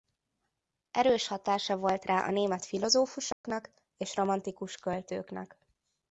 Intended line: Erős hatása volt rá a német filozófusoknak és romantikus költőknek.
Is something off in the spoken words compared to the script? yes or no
no